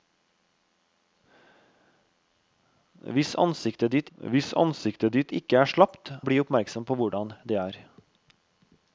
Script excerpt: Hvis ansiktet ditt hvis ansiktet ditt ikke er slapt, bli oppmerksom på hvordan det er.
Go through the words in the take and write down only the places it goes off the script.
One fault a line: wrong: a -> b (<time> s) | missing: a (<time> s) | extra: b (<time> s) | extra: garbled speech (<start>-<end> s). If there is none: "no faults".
no faults